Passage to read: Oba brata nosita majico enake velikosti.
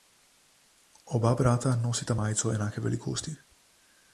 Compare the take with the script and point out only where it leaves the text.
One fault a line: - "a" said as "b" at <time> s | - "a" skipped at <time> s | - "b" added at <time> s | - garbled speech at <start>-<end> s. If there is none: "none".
none